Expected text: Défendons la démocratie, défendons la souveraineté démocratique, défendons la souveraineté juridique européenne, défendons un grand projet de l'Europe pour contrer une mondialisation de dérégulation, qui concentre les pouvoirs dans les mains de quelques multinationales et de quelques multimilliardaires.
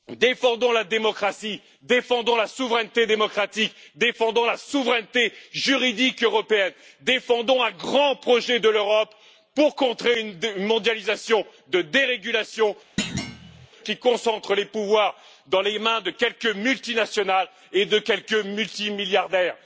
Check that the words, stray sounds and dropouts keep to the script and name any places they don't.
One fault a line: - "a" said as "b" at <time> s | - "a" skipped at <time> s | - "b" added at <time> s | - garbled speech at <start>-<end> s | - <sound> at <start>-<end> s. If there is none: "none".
- thud at 13.0-13.7 s